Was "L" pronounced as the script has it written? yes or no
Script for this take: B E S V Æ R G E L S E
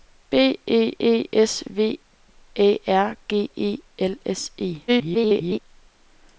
yes